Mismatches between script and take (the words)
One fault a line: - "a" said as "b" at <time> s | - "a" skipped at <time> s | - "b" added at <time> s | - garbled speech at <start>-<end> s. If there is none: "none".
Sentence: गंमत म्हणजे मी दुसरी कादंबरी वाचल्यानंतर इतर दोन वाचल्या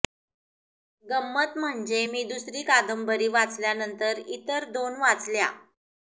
none